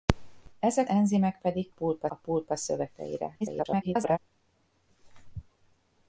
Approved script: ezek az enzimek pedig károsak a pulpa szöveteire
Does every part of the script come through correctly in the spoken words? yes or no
no